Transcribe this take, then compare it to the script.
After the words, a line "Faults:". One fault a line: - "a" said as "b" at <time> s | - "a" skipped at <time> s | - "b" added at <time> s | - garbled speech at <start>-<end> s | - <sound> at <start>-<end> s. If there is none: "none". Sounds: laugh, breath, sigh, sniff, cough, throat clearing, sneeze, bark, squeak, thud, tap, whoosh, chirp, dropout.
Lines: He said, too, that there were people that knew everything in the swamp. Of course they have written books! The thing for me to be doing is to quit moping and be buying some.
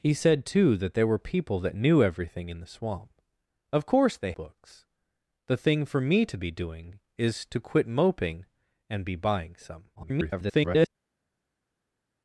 He said, too, that there were people that knew everything in the swamp. Of course they books! The thing for me to be doing is to quit moping and be buying some. [garbled]
Faults:
- "have written" skipped at 4.3 s
- garbled speech at 10.0-10.9 s